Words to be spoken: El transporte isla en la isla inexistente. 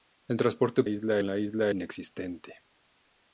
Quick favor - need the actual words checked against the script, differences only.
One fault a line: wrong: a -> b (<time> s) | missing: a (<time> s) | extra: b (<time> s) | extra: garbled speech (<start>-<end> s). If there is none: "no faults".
no faults